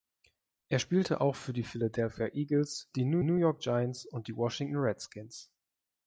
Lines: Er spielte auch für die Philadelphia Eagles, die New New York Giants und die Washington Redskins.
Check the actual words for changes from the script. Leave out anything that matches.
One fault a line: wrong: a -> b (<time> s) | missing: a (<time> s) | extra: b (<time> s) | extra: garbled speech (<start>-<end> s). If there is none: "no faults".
no faults